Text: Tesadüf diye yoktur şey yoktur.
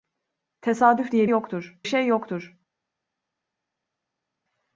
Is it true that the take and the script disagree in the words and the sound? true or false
false